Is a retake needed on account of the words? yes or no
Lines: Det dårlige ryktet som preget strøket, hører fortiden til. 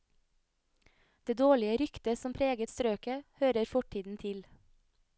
no